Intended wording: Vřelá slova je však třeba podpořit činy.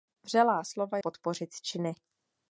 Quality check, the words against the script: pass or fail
fail